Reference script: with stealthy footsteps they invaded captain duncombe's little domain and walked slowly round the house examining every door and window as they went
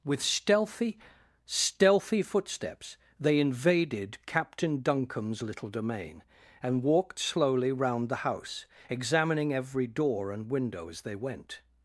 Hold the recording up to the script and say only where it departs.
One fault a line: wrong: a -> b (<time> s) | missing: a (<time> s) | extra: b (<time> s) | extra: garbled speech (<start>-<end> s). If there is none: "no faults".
extra: stealthy (1.4 s)